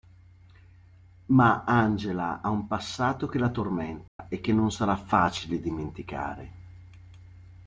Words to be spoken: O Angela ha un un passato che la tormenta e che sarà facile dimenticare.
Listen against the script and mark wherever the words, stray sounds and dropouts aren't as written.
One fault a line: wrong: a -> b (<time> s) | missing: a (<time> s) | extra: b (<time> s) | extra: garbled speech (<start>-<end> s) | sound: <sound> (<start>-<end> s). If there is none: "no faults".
wrong: O -> Ma (1.3 s)
missing: un (2.6 s)
sound: dropout (4.1-4.2 s)
extra: non (4.5 s)